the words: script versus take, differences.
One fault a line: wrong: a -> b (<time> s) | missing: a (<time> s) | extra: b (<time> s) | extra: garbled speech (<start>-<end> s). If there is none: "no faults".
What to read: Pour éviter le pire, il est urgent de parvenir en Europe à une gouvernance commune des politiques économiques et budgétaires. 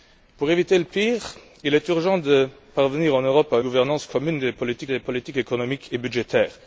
missing: une (3.6 s)
extra: des politiques (4.9 s)